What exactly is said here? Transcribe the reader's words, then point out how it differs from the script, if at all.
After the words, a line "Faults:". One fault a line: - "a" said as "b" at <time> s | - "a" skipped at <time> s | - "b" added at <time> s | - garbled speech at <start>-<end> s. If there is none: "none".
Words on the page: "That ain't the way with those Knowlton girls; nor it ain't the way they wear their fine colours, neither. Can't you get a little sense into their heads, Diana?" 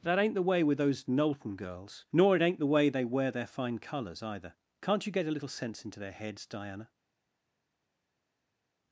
"That ain't the way with those Knowlton girls; nor it ain't the way they wear their fine colours, either. Can't you get a little sense into their heads, Diana?"
Faults:
- "neither" said as "either" at 4.2 s